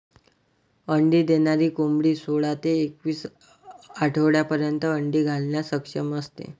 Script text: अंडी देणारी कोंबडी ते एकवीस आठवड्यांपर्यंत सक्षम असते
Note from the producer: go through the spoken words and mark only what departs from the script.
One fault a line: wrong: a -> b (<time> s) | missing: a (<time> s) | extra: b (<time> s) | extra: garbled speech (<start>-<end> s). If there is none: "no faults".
extra: सोळा (2.1 s)
extra: अंडी घालण्यास (4.9 s)